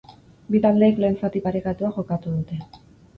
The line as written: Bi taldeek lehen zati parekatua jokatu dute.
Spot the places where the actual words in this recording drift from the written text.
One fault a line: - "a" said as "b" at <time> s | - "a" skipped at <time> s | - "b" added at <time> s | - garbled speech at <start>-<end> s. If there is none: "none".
none